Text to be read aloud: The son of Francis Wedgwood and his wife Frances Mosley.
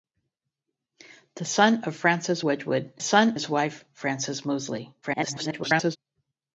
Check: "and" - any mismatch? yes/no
yes